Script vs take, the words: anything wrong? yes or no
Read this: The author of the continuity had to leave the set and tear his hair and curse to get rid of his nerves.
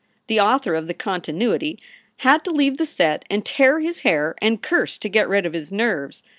no